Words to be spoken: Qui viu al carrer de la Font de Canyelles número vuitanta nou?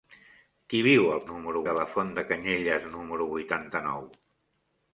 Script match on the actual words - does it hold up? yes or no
no